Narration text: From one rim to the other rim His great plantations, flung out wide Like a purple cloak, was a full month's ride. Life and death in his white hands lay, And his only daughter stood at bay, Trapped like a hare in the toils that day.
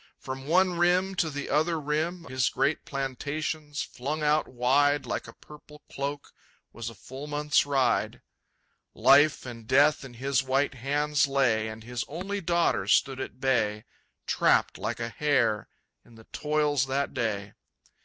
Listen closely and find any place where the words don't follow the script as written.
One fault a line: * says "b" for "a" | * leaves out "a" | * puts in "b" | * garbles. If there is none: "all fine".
all fine